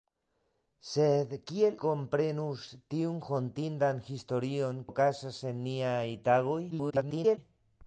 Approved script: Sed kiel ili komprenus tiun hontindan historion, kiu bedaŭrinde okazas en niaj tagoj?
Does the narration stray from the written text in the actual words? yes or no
yes